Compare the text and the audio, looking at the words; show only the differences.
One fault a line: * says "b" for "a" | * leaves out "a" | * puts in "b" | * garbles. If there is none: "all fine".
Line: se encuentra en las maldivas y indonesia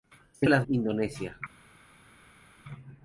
* leaves out "encuentra"
* leaves out "maldivas y"